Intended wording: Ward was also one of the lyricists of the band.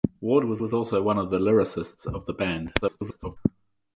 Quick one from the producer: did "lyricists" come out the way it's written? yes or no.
yes